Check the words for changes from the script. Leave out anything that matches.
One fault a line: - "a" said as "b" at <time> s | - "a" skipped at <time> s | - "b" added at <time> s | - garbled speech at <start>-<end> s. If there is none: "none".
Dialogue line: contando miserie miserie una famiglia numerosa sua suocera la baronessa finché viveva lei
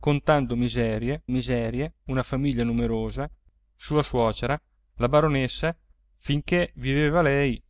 none